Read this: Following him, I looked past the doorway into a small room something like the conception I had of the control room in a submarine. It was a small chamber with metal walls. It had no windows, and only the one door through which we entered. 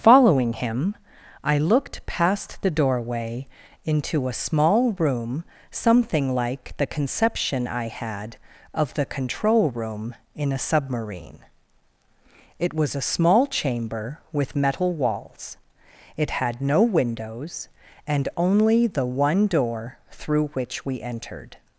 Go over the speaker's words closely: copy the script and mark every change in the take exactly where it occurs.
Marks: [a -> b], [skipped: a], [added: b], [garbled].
Following him, I looked past the doorway into a small room something like the conception I had of the control room in a submarine. It was a small chamber with metal walls. It had no windows, and only the one door through which we entered.